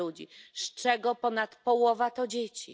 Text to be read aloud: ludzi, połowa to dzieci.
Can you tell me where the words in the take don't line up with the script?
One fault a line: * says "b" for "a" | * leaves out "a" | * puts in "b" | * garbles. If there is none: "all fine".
* puts in "z czego ponad"